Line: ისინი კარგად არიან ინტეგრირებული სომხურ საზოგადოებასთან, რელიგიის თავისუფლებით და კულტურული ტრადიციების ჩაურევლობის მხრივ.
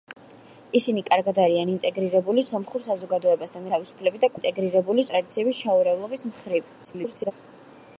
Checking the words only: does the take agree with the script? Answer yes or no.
no